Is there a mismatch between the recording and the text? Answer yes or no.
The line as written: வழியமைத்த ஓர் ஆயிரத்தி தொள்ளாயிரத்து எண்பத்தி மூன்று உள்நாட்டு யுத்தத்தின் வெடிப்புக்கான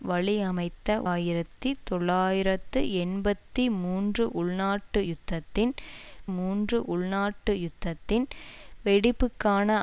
yes